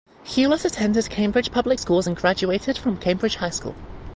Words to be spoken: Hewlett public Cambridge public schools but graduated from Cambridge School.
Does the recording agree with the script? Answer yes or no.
no